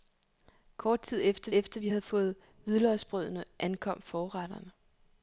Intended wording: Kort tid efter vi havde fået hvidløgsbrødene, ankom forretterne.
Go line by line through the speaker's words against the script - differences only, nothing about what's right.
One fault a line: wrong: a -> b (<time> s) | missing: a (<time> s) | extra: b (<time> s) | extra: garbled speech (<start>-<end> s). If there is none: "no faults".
extra: efter (1.5 s)